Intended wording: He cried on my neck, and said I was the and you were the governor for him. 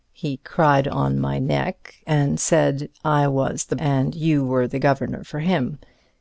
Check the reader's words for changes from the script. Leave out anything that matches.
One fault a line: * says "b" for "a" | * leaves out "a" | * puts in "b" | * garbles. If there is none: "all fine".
all fine